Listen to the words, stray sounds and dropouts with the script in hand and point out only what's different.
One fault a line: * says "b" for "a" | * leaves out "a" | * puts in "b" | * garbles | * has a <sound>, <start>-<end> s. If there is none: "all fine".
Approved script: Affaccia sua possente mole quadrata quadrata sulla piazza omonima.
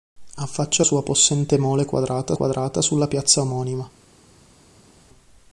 all fine